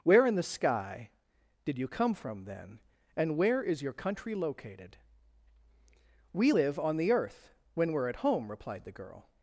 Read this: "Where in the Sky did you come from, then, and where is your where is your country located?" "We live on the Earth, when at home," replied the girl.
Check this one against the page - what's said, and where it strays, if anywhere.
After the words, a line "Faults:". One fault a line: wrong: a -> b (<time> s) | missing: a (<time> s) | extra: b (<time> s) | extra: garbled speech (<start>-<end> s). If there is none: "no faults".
"Where in the Sky did you come from, then, and where is your country located?" "We live on the Earth, when we're at home," replied the girl.
Faults:
missing: where is your (3.9 s)
extra: we're (7.9 s)